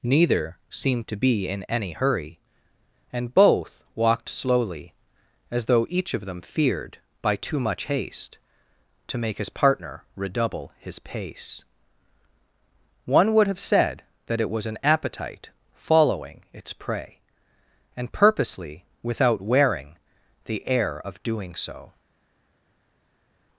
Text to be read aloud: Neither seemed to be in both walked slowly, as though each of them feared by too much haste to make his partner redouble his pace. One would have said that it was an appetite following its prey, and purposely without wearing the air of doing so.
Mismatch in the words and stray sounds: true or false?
true